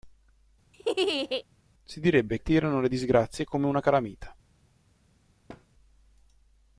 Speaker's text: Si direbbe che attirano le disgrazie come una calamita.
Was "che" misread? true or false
true